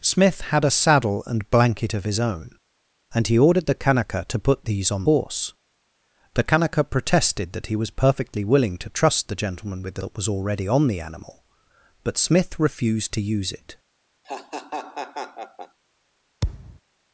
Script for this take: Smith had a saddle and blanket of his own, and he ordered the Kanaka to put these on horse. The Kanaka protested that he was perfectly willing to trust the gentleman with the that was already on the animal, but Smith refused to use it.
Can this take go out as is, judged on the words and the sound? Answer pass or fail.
fail